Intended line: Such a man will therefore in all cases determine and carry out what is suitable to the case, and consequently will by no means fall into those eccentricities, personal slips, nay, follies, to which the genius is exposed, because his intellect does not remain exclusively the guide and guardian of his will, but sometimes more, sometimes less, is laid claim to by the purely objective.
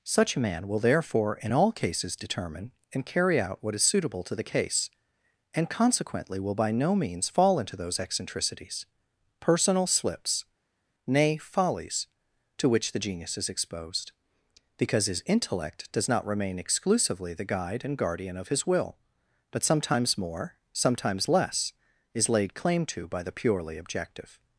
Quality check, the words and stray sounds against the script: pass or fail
pass